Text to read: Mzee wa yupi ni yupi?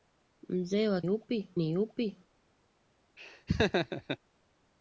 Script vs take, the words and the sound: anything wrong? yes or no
yes